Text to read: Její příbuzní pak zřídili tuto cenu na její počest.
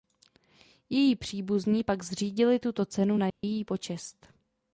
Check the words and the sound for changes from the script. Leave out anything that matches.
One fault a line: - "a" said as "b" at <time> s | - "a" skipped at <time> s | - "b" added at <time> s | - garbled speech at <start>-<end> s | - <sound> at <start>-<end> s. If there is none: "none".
- dropout at 3.3-3.4 s